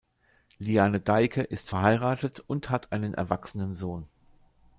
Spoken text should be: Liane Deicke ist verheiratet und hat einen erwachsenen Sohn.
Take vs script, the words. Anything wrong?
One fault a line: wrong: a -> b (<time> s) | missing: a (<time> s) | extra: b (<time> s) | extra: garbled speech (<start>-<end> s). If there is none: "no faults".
no faults